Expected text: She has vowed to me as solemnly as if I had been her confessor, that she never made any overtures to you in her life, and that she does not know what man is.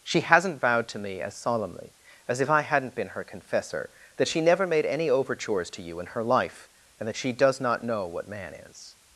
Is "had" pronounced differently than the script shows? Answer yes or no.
yes